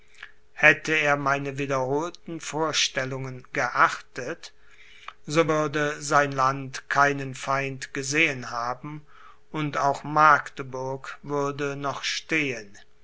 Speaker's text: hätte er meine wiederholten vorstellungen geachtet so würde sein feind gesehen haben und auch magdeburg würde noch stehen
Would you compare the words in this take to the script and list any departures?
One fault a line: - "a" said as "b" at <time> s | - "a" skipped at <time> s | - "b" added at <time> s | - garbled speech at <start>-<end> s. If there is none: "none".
- "land keinen" added at 6.3 s